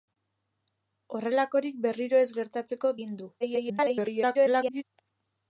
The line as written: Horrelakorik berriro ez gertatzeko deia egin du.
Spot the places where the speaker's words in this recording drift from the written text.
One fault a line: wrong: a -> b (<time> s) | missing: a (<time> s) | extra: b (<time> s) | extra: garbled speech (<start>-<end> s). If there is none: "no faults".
missing: deia (3.0 s)
extra: garbled speech (3.4-4.8 s)